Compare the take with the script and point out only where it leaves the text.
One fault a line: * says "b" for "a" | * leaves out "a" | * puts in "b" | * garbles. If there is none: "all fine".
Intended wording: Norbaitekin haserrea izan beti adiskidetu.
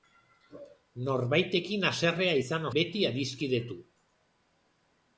all fine